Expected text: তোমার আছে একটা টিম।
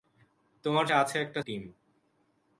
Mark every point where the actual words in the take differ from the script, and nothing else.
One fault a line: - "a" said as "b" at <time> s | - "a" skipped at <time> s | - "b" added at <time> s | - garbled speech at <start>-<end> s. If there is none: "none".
none